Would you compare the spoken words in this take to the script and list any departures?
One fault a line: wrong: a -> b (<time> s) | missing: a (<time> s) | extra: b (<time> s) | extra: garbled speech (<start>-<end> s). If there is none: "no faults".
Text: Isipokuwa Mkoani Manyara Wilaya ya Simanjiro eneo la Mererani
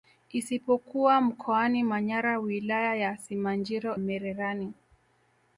missing: eneo la (4.0 s)